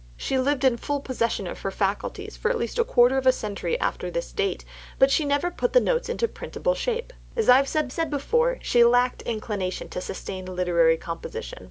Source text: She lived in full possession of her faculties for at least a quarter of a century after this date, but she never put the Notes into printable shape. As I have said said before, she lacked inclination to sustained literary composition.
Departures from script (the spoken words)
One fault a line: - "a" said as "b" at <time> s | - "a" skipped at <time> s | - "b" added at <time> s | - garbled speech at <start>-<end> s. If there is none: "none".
none